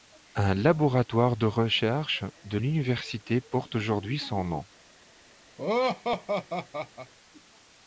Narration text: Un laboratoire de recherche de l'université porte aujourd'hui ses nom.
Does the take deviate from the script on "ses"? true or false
true